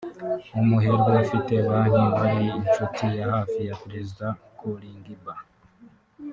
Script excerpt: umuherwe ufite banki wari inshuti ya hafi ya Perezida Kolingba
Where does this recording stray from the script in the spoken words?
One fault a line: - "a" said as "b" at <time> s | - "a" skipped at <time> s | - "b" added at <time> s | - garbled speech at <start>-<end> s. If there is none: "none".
none